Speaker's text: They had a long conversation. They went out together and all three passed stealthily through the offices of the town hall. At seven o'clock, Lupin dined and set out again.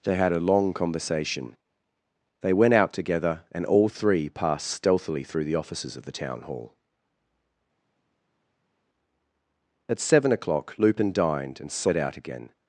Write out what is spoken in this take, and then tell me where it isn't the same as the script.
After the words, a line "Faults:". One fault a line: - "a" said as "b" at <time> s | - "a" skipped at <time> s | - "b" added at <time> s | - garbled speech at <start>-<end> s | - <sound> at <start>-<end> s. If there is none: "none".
They had a long conversation. They went out together and all three passed stealthily through the offices of the town hall. At seven o'clock, Lupin dined and set out again.
Faults:
none